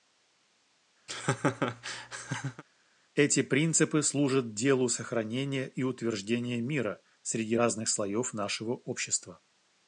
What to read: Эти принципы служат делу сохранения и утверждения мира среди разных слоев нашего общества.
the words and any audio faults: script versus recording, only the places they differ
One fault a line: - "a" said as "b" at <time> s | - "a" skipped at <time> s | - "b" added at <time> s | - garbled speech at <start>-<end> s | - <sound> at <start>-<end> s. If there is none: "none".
- laugh at 1.1-2.6 s